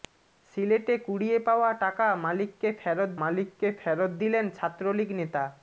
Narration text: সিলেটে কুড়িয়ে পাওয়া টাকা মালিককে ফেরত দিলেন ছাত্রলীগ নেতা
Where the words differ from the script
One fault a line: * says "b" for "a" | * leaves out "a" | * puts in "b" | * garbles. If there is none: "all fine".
* puts in "মালিককে ফেরত"